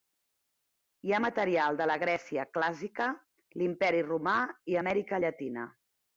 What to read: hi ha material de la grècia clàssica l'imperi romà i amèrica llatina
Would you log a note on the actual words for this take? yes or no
no